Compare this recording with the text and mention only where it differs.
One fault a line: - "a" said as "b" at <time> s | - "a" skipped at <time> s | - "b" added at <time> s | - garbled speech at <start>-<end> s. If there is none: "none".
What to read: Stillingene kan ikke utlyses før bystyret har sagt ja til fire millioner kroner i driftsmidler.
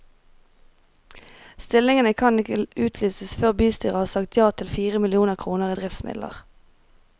none